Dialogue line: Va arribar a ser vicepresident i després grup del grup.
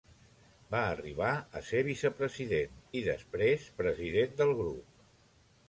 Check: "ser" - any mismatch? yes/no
no